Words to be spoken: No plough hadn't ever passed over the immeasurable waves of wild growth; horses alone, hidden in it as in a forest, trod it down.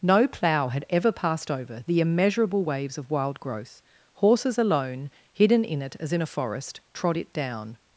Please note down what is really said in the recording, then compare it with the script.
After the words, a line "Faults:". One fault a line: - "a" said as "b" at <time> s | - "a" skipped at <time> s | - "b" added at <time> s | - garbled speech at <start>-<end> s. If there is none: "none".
No plough had ever passed over the immeasurable waves of wild growth; horses alone, hidden in it as in a forest, trod it down.
Faults:
- "hadn't" said as "had" at 0.7 s